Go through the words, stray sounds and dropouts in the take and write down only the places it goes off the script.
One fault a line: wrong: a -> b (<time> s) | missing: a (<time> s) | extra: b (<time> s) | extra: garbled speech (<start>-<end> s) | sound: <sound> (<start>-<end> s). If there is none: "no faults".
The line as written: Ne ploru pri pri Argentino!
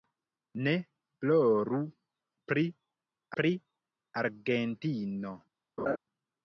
sound: laugh (5.8-6.0 s)